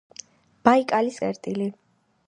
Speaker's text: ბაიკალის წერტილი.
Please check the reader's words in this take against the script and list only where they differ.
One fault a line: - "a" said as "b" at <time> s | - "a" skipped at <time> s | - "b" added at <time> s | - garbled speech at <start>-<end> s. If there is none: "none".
none